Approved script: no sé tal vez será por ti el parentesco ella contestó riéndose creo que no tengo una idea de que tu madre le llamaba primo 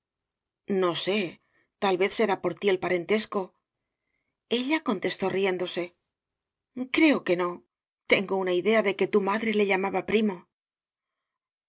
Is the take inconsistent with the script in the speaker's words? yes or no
no